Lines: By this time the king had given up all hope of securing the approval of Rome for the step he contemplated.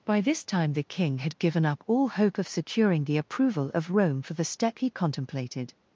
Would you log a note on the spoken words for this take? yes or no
no